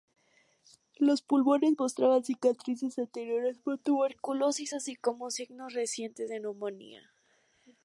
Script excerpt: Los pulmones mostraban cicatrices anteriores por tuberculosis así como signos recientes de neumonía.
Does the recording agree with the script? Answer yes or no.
yes